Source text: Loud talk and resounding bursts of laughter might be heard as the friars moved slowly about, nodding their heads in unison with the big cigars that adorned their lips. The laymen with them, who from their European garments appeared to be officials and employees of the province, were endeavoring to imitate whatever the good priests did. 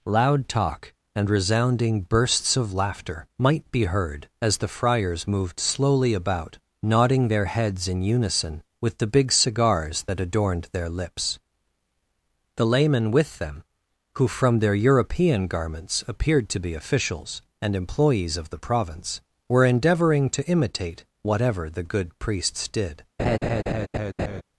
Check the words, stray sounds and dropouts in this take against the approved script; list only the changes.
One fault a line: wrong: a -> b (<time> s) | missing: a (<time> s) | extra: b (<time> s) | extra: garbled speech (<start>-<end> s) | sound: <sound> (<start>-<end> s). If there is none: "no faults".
sound: laugh (23.2-24.4 s)